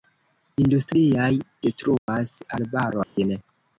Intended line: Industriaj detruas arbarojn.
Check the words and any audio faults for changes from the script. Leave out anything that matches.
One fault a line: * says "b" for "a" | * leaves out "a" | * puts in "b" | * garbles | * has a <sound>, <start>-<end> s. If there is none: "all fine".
* has a dropout, 2.0-2.1 s
* has a dropout, 3.0-3.2 s